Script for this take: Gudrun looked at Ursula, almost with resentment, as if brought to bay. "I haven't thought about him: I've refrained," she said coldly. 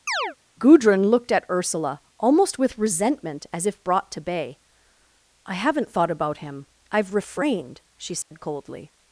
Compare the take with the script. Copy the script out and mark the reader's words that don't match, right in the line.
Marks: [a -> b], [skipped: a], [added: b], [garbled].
Gudrun looked at Ursula, almost with resentment, as if brought to bay. "I haven't thought about him: I've refrained," she said coldly.